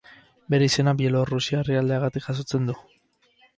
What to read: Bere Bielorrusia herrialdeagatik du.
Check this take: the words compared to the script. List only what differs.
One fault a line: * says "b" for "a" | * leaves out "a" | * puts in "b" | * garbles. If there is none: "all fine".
* puts in "izena"
* puts in "jasotzen"